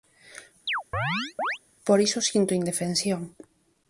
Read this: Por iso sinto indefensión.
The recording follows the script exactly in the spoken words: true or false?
true